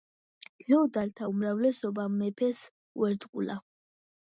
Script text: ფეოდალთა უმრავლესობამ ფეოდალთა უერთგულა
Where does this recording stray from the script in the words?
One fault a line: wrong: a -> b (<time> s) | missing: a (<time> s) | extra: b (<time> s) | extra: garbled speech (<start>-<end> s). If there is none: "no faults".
wrong: ფეოდალთა -> მეფეს (2.2 s)